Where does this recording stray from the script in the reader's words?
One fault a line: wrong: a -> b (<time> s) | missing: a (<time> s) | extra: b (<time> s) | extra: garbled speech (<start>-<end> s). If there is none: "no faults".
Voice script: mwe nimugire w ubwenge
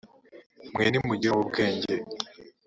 no faults